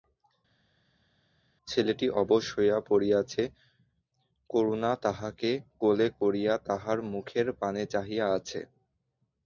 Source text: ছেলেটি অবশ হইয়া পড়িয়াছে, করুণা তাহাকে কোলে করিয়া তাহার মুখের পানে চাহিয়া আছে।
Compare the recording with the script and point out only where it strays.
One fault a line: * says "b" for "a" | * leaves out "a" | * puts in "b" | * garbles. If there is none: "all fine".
all fine